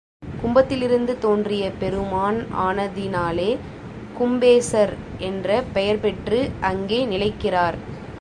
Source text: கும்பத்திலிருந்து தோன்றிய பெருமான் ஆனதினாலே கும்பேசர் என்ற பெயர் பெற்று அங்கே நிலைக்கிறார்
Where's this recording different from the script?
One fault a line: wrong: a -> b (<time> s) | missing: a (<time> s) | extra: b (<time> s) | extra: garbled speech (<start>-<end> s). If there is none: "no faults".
no faults